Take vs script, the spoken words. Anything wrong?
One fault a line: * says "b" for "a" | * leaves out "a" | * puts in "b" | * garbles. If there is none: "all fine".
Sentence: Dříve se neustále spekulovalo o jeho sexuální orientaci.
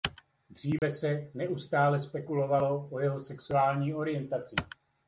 all fine